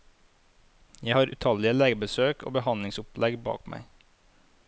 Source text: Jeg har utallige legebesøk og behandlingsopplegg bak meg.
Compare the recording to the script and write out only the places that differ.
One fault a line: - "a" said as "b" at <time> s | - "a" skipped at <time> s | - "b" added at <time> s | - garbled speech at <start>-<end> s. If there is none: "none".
none